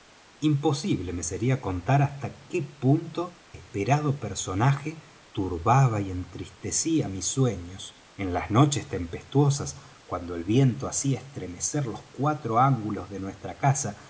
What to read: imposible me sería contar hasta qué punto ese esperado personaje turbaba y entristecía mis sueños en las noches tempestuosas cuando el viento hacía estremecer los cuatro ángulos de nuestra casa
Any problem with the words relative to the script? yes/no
yes